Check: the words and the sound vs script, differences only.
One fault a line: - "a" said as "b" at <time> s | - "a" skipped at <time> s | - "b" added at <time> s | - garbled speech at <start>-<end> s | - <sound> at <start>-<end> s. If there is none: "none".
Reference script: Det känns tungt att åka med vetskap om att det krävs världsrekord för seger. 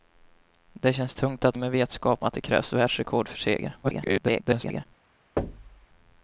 - "åka" skipped at 1.6 s
- "om" skipped at 2.2 s
- garbled speech at 3.8-4.9 s
- thud at 5.4-5.9 s